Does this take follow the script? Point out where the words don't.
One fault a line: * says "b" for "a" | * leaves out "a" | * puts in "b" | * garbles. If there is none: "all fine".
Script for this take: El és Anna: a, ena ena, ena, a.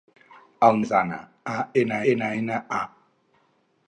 all fine